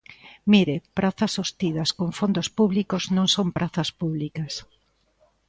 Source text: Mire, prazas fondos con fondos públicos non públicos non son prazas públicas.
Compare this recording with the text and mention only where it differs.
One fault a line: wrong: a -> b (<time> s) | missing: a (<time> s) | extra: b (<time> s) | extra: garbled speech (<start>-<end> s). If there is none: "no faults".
wrong: fondos -> sostidas (1.4 s)
missing: públicos non (3.3 s)